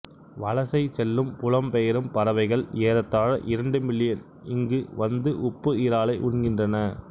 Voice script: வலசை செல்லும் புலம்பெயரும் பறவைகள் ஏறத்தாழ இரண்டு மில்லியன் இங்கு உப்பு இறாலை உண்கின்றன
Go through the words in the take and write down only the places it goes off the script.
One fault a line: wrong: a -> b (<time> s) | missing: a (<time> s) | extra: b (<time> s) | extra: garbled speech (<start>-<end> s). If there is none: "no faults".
extra: வந்து (5.0 s)